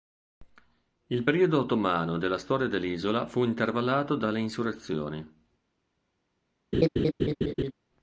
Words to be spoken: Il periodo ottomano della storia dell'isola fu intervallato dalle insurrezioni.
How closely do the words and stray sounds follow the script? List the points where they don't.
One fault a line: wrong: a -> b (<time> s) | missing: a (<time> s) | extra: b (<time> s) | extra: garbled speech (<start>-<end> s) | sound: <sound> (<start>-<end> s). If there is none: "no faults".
sound: laugh (6.7-7.7 s)